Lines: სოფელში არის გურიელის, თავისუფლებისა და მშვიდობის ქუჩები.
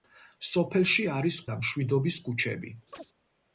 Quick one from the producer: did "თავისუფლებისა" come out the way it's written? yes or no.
no